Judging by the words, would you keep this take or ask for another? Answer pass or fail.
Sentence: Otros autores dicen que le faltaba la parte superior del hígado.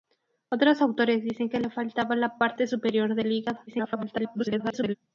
fail